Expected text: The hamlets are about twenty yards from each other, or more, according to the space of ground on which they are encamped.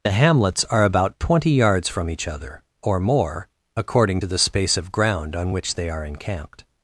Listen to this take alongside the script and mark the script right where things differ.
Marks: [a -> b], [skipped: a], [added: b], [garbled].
The hamlets are about twenty yards from each other, or more, according to the space of ground on which they are encamped.